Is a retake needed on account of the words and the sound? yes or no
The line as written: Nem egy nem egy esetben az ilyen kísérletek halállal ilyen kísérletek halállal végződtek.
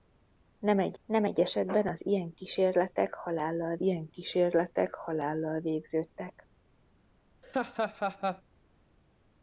yes